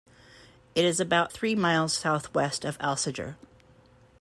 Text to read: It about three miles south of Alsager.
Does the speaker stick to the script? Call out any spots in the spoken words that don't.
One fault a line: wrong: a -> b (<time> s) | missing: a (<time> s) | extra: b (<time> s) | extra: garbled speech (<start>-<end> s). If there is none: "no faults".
extra: is (0.8 s)
extra: west (2.3 s)